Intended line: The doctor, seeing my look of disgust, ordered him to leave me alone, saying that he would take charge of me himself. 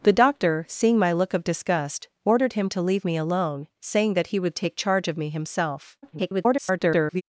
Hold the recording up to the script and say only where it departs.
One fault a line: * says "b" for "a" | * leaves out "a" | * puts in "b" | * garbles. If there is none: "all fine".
* garbles